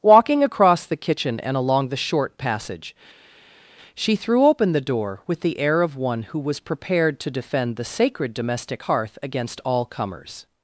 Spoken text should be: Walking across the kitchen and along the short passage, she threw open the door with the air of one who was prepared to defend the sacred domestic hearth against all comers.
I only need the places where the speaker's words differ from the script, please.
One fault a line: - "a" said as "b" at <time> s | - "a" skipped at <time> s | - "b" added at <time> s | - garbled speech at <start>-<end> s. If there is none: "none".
none